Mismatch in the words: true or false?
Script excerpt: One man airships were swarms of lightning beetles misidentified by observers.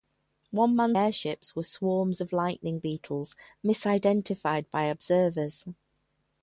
false